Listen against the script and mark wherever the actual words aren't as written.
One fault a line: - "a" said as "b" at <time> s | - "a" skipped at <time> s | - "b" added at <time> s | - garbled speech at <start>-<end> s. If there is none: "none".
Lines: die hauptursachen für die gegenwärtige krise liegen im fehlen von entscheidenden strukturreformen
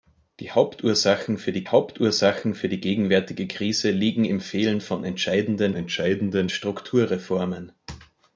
- "hauptursachen für die" added at 1.7 s
- "entscheidenden" added at 5.8 s